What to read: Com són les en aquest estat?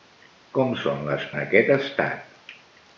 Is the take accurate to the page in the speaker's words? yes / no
yes